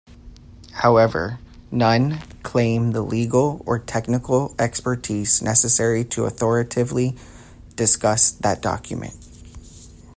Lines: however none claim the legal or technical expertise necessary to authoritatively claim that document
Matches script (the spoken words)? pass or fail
fail